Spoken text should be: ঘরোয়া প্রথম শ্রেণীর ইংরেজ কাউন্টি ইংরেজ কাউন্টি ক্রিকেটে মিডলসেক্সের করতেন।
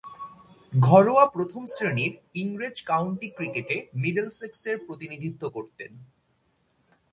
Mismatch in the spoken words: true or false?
true